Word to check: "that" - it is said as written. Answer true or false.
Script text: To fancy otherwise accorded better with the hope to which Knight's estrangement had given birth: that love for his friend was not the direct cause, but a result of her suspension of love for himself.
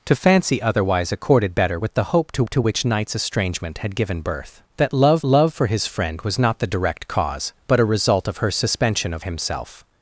true